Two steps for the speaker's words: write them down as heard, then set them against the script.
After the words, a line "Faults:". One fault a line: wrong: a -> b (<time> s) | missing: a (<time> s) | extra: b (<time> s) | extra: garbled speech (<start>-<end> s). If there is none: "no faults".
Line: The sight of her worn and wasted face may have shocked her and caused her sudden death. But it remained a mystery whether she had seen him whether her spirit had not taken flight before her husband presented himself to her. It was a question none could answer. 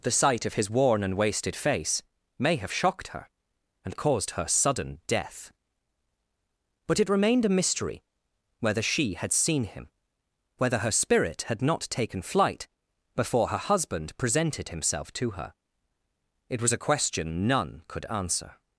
The sight of his worn and wasted face may have shocked her and caused her sudden death. But it remained a mystery whether she had seen him whether her spirit had not taken flight before her husband presented himself to her. It was a question none could answer.
Faults:
wrong: her -> his (0.6 s)